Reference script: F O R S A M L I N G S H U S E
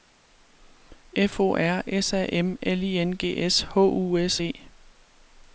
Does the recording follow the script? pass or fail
pass